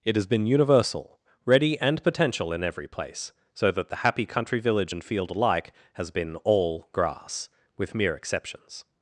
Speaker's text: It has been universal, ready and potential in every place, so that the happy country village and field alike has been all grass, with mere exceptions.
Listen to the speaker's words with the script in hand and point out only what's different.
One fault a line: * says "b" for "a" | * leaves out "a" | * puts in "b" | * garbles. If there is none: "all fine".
all fine